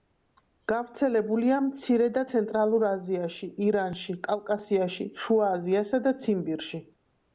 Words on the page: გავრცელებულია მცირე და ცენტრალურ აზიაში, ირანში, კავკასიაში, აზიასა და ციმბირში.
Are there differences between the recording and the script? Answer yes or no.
yes